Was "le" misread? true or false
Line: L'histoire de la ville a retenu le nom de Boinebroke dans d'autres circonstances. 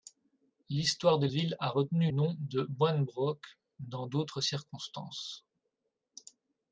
true